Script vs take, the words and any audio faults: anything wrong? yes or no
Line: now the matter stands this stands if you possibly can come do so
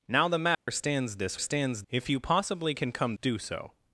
yes